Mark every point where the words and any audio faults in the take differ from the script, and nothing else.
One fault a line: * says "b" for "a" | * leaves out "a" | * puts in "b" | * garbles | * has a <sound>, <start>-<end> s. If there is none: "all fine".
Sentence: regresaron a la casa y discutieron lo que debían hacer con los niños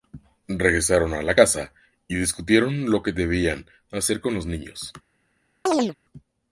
* has a chirp, 5.7-6.0 s